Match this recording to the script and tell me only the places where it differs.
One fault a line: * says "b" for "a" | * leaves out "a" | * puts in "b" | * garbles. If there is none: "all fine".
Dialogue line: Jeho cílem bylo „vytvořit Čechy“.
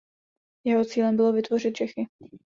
all fine